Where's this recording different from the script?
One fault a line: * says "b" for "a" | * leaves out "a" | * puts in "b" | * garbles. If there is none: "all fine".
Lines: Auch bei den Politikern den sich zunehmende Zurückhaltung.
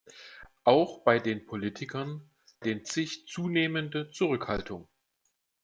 all fine